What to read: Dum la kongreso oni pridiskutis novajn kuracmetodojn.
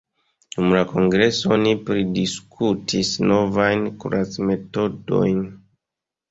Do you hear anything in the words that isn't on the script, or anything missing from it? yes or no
no